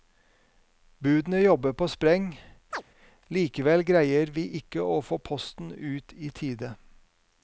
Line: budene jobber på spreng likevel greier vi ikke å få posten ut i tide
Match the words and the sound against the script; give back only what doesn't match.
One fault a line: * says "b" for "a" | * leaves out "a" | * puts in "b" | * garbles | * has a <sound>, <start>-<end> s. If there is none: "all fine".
* has a chirp, 2.7-2.8 s